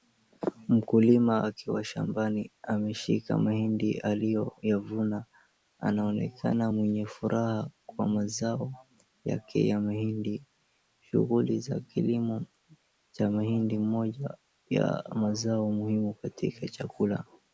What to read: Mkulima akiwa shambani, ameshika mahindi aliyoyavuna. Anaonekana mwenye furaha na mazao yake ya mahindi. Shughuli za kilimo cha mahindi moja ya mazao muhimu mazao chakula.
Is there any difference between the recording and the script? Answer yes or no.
yes